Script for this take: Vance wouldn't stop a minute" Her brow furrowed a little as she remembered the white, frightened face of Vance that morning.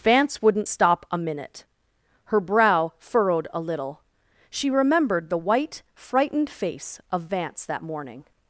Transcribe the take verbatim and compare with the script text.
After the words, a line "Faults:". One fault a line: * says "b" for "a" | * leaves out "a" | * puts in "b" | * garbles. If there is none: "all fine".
Vance wouldn't stop a minute" Her brow furrowed a little she remembered the white, frightened face of Vance that morning.
Faults:
* leaves out "as"